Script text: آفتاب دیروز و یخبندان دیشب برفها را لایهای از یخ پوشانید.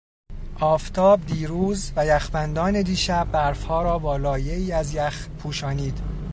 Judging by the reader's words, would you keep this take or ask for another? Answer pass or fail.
fail